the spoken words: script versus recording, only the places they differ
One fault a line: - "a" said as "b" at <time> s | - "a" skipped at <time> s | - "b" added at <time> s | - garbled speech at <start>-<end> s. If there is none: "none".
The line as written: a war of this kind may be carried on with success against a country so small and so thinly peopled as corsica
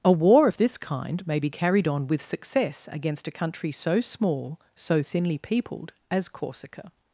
- "and" skipped at 4.6 s